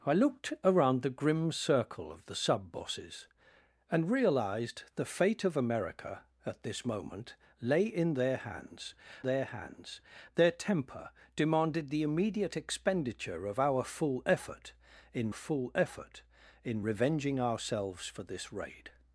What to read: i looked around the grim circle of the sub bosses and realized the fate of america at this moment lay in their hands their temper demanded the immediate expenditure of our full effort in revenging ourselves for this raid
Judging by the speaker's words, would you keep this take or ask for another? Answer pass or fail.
fail